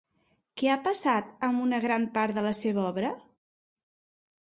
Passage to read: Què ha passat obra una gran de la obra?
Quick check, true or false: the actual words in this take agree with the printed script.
false